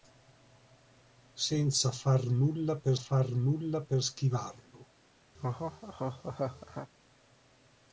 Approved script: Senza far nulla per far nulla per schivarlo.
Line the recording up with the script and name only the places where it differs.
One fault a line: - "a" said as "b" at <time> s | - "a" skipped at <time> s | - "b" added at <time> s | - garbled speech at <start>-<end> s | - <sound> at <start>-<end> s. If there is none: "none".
- laugh at 5.3-6.9 s